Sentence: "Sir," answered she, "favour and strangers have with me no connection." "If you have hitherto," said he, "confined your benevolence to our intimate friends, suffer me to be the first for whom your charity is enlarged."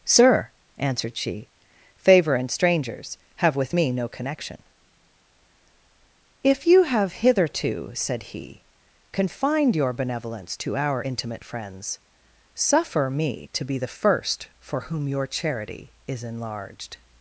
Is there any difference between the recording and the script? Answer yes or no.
no